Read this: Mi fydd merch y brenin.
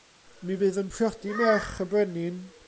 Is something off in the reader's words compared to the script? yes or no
yes